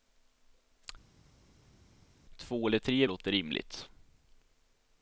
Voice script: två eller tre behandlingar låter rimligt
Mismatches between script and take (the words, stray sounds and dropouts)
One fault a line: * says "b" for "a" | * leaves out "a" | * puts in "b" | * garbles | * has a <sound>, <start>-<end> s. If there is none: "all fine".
* leaves out "behandlingar"